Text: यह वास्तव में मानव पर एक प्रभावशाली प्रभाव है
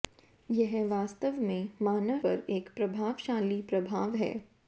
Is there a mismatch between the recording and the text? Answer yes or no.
no